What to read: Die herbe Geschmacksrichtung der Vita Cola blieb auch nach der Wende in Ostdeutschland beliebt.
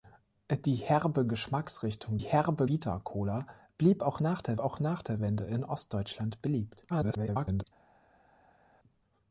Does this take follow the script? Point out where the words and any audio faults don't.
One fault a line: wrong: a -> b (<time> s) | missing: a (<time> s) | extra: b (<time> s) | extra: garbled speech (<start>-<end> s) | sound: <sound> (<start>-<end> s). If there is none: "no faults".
wrong: der -> herbe (2.2 s)
extra: auch nach der (4.6 s)
extra: garbled speech (6.9-7.6 s)